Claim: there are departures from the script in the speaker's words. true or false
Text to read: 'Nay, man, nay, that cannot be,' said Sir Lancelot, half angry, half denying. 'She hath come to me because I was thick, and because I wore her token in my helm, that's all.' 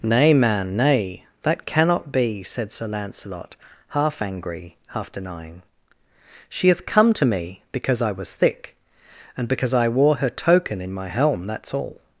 false